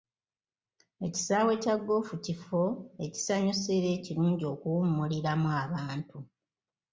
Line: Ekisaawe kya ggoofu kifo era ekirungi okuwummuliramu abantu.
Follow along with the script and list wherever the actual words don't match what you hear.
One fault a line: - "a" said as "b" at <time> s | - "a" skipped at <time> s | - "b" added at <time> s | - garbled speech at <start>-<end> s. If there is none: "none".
- "ekisanyusa" added at 3.1 s